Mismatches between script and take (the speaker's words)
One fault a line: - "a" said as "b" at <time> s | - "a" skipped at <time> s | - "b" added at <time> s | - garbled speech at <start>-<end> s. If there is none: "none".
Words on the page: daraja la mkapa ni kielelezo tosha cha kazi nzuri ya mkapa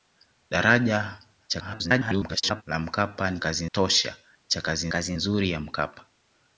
- garbled speech at 1.5-2.6 s
- "kielelezo" said as "kazi" at 3.4 s
- "kazi" added at 4.9 s